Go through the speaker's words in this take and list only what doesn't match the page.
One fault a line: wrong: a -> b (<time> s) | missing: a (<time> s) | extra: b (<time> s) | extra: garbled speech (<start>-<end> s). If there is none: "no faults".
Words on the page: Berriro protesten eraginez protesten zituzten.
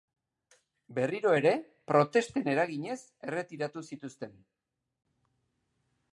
extra: ere (1.4 s)
wrong: protesten -> erretiratu (3.3 s)